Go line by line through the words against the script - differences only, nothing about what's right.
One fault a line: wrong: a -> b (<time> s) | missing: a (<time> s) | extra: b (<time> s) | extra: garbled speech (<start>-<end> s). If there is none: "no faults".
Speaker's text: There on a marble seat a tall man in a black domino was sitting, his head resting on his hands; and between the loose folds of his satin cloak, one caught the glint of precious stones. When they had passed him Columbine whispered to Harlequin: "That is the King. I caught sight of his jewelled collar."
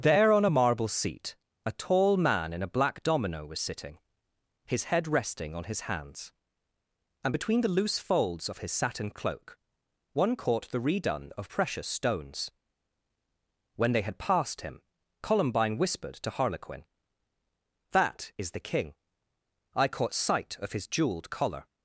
wrong: glint -> redone (10.8 s)